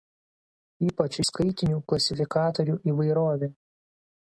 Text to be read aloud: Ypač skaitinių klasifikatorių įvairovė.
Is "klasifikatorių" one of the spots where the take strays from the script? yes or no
no